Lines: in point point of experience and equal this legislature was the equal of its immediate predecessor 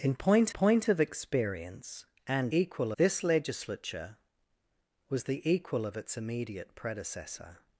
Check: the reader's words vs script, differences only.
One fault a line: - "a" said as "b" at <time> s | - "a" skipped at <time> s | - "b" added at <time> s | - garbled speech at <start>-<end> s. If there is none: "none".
none